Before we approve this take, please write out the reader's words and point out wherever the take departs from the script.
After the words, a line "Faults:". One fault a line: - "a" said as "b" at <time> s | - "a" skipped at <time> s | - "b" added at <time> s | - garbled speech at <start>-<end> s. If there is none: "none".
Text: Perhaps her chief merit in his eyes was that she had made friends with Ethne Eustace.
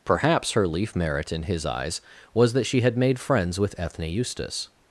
Perhaps her leaf merit in his eyes was that she had made friends with Ethne Eustace.
Faults:
- "chief" said as "leaf" at 0.7 s